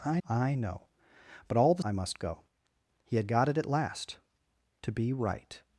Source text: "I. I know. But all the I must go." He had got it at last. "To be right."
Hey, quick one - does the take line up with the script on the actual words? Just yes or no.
yes